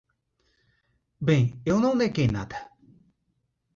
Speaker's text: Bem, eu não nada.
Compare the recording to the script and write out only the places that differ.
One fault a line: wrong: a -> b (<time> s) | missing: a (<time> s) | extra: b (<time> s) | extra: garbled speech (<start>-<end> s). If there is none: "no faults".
extra: neguei (1.9 s)